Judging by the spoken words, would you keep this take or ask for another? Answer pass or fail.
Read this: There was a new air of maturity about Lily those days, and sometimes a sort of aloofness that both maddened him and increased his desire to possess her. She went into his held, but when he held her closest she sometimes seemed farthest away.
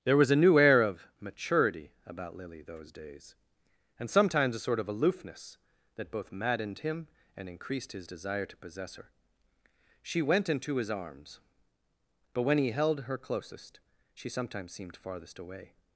fail